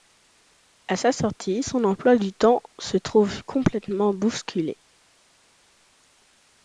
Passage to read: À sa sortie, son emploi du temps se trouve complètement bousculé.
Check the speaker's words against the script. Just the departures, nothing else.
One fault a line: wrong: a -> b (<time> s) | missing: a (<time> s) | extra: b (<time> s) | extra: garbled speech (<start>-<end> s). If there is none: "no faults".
no faults